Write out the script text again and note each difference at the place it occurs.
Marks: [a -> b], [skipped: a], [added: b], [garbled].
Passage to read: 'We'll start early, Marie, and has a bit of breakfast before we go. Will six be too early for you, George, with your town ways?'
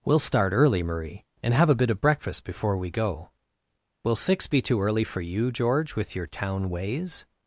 'We'll start early, Marie, and [has -> have] a bit of breakfast before we go. Will six be too early for you, George, with your town ways?'